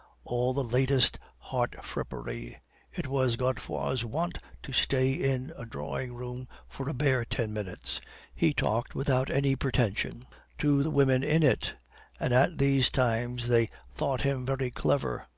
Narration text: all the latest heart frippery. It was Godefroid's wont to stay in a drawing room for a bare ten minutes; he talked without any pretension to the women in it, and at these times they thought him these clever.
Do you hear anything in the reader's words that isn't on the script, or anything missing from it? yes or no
yes